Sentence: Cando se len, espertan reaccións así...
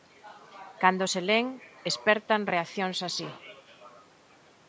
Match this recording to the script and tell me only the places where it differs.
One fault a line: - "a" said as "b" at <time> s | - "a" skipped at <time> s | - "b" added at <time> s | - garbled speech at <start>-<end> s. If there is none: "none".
none